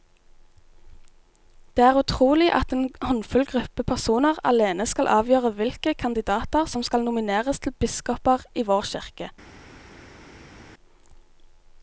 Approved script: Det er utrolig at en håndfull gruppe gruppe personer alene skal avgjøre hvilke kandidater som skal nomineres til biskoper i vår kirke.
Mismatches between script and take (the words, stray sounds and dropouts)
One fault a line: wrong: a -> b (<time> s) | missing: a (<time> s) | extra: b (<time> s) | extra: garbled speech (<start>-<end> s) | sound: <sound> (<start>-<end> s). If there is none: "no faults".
missing: gruppe (3.8 s)